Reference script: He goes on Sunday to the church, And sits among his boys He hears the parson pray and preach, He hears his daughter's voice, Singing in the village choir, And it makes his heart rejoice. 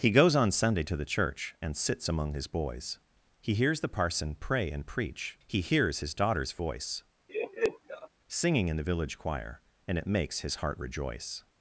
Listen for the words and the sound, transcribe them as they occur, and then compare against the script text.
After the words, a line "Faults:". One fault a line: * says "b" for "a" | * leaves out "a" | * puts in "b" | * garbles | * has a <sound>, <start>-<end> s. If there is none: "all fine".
He goes on Sunday to the church, And sits among his boys He hears the parson pray and preach, He hears his daughter's voice, Singing in the village choir, And it makes his heart rejoice.
Faults:
* has a laugh, 7.3-8.1 s